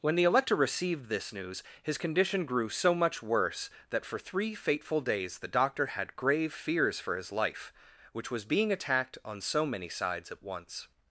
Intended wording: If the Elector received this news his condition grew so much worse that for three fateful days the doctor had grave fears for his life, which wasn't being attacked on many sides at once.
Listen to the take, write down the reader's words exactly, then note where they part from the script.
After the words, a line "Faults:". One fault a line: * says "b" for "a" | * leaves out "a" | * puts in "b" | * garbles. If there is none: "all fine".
When the Elector received this news his condition grew so much worse that for three fateful days the doctor had grave fears for his life, which was being attacked on so many sides at once.
Faults:
* says "When" for "If"
* says "was" for "wasn't"
* puts in "so"